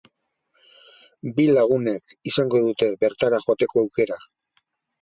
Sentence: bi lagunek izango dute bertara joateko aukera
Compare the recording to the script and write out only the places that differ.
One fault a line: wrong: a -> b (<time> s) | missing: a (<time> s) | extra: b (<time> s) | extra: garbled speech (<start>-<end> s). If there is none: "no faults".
no faults